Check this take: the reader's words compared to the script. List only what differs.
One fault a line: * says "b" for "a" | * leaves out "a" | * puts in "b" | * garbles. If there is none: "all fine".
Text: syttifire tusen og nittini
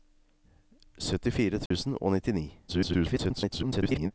* garbles